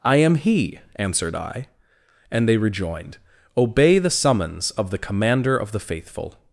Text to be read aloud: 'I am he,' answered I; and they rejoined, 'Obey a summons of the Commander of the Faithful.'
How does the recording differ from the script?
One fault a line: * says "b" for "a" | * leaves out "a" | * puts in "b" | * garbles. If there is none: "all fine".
* says "the" for "a"